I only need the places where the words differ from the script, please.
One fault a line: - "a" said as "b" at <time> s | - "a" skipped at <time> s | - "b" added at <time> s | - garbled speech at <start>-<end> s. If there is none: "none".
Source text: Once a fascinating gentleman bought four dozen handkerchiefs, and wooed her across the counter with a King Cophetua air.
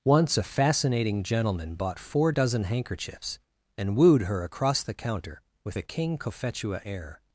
none